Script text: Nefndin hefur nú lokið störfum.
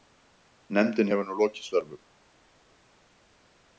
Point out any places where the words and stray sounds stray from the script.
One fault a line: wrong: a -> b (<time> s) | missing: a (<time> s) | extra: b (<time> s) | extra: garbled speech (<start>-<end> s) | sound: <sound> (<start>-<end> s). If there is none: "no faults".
no faults